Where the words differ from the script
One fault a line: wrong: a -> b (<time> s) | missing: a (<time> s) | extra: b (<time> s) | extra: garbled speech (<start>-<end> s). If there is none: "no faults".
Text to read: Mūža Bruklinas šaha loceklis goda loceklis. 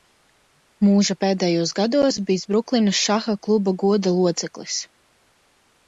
extra: pēdējos gados bijis (1.2 s)
wrong: loceklis -> kluba (3.5 s)